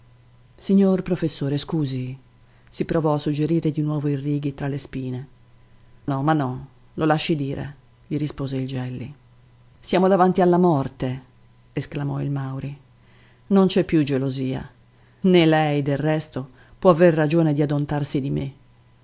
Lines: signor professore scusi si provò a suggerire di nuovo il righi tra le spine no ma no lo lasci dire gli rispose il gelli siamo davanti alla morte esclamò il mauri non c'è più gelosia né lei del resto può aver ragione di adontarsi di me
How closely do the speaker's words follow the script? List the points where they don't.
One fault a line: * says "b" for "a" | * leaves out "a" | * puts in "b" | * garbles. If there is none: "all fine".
all fine